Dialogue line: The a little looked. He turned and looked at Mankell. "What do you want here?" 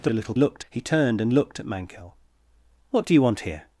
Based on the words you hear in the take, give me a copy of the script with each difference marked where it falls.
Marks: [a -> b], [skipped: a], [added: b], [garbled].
The a little looked. He turned and looked at Mankell. "What do you want here?"